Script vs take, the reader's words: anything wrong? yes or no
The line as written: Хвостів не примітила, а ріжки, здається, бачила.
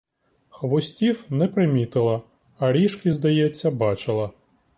no